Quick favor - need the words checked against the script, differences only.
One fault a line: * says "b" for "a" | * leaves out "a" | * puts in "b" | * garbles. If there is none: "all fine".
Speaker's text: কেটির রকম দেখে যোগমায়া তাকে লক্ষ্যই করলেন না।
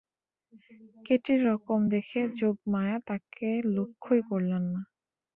all fine